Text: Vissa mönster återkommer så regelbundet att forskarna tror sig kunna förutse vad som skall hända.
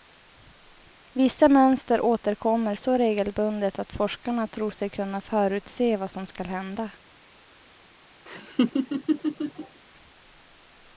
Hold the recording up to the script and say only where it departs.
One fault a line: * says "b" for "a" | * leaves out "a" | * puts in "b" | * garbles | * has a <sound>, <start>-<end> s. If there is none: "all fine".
* has a laugh, 8.2-9.8 s